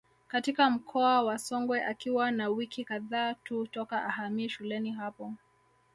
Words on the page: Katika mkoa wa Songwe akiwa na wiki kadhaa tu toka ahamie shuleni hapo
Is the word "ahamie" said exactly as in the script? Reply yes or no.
yes